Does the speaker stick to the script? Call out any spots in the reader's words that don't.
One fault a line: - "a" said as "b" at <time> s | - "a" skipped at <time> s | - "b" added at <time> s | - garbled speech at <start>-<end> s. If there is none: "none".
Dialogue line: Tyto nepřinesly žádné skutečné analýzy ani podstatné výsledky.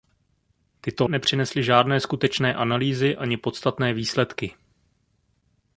none